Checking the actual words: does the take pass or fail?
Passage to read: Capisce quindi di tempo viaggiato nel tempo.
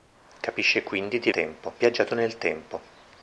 pass